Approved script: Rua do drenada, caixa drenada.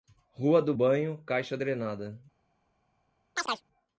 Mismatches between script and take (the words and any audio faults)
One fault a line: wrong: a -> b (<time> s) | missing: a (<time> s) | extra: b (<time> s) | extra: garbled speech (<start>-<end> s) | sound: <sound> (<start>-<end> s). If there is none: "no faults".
wrong: drenada -> banho (0.7 s)
sound: chirp (3.4-3.6 s)